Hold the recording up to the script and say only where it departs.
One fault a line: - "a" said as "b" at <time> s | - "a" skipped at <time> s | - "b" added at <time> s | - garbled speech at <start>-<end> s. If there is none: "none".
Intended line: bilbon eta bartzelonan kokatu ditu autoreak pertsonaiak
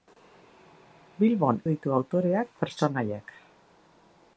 - "eta bartzelonan kokatu" skipped at 1.6 s